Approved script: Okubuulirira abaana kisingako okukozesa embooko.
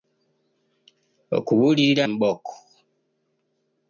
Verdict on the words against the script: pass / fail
fail